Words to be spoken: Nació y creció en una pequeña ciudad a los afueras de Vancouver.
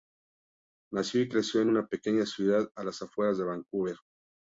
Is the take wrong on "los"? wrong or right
wrong